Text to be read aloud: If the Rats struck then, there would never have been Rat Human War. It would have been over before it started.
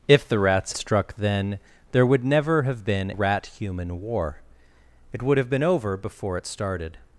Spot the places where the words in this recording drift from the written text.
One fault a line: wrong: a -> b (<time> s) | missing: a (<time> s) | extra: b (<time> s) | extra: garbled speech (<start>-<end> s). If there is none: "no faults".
no faults